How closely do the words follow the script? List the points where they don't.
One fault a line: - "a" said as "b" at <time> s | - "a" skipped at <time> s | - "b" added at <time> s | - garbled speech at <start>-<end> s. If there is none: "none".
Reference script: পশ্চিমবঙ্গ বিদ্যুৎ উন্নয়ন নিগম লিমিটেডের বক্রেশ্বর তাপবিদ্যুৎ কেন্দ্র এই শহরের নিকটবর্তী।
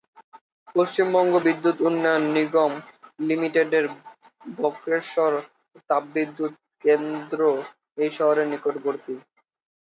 none